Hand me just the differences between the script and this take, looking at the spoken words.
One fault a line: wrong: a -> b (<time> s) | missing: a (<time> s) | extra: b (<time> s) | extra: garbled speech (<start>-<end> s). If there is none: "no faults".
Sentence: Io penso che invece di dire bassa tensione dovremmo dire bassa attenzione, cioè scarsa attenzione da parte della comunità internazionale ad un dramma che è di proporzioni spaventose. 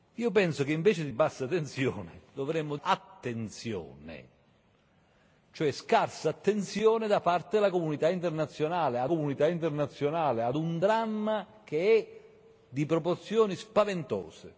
missing: dire (1.1 s)
missing: dire bassa (2.8 s)
extra: comunità internazionale ad (9.1 s)